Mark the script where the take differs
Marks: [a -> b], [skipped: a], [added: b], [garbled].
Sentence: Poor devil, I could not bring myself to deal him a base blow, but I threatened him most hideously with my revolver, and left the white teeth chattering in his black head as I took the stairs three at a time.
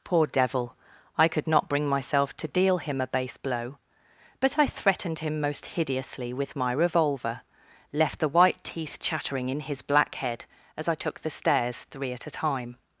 Poor devil, I could not bring myself to deal him a base blow, but I threatened him most hideously with my revolver, [skipped: and] left the white teeth chattering in his black head as I took the stairs three at a time.